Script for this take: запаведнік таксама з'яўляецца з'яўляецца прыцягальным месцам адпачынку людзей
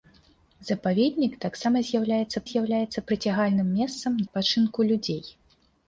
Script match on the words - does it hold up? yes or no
yes